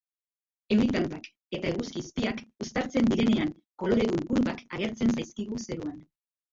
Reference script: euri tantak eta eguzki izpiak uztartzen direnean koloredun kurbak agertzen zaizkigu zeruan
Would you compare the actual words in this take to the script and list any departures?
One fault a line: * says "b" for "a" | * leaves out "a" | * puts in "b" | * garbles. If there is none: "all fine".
all fine